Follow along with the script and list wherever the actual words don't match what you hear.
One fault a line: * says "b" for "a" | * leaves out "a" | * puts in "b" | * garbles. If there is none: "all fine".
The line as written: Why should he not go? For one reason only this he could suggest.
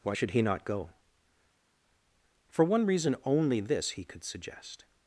all fine